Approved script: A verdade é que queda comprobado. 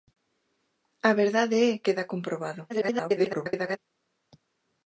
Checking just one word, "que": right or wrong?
wrong